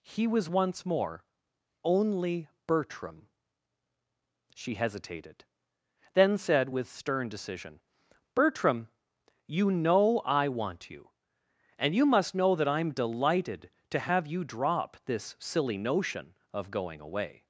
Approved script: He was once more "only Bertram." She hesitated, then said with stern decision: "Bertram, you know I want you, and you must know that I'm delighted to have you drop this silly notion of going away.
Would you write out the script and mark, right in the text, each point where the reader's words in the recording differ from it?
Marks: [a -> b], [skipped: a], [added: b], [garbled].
He was once more "only Bertram." She hesitated, then said with stern decision: "Bertram, you know I want you, and you must know that I'm delighted to have you drop this silly notion of going away.